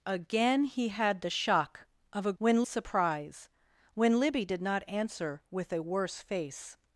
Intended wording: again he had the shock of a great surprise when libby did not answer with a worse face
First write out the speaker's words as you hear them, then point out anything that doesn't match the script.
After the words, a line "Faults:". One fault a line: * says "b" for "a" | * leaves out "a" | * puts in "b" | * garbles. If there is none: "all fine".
again he had the shock of a when surprise when libby did not answer with a worse face
Faults:
* says "when" for "great"